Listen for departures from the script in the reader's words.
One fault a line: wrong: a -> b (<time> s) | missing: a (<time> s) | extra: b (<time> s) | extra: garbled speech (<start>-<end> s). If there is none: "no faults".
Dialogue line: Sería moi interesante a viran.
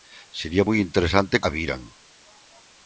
no faults